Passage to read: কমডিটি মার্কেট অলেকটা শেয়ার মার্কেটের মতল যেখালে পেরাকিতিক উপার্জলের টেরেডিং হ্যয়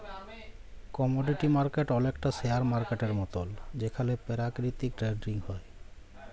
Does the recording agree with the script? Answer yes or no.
no